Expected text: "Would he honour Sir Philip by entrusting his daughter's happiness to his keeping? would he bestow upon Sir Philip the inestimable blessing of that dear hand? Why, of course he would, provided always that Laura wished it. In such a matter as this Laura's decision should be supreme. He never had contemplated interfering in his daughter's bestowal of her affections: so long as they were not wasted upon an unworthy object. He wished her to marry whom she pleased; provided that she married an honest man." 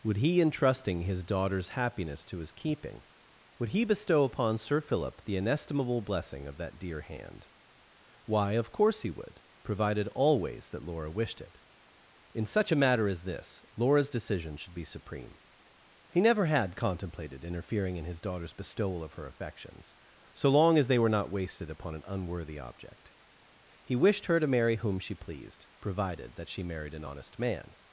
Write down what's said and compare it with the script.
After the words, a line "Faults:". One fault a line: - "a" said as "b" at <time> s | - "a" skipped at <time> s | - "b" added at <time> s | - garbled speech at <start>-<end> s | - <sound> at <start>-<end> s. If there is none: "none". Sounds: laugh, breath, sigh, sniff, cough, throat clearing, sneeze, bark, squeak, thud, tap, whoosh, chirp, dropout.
"Would he entrusting his daughter's happiness to his keeping? would he bestow upon Sir Philip the inestimable blessing of that dear hand? Why, of course he would, provided always that Laura wished it. In such a matter as this Laura's decision should be supreme. He never had contemplated interfering in his daughter's bestowal of her affections: so long as they were not wasted upon an unworthy object. He wished her to marry whom she pleased; provided that she married an honest man."
Faults:
- "honour Sir Philip by" skipped at 0.4 s